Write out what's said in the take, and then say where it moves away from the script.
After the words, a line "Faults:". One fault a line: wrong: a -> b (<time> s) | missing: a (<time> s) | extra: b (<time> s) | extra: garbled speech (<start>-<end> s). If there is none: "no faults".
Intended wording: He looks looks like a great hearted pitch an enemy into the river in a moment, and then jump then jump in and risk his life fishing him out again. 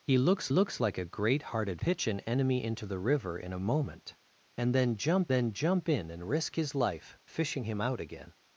He looks looks like a great hearted pitch an enemy into the river in a moment, and then jump then jump in and risk his life fishing him out again.
Faults:
no faults